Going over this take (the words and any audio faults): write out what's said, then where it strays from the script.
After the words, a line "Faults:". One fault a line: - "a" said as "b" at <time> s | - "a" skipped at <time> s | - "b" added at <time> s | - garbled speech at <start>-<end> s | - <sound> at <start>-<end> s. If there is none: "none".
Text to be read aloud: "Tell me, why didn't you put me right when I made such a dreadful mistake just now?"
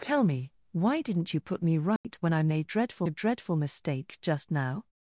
"Tell me, why didn't you put me right when I made dreadful a dreadful mistake just now?"
Faults:
- dropout at 2.0-2.0 s
- "such" said as "dreadful" at 2.6 s